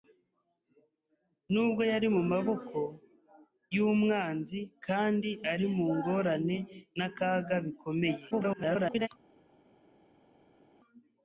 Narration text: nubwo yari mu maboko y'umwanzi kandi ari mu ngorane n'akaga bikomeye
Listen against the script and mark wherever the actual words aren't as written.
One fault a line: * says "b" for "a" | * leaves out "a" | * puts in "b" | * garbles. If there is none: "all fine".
* garbles